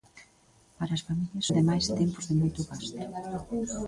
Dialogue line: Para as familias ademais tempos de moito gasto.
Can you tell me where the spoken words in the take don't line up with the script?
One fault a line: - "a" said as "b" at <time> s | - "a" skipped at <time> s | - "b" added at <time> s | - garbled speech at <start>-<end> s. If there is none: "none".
none